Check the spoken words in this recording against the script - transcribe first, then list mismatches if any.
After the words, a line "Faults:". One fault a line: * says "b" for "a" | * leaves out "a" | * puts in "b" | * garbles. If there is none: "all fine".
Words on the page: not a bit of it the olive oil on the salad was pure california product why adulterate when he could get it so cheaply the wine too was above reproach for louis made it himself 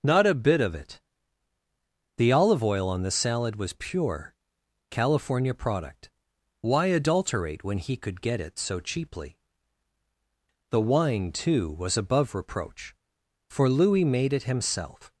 not a bit of it the olive oil on the salad was pure california product why adulterate when he could get it so cheaply the wine too was above reproach for louis made it himself
Faults:
all fine